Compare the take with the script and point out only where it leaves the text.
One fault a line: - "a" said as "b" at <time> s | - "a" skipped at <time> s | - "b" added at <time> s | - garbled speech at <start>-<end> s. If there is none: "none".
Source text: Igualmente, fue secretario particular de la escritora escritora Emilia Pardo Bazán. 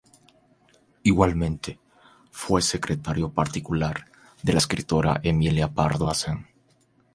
- "escritora" skipped at 5.2 s